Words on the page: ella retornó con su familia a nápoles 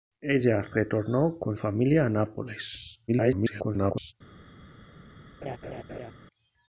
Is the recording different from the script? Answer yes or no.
yes